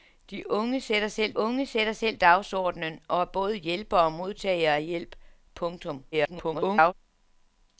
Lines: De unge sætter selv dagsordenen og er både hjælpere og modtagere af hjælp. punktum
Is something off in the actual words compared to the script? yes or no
yes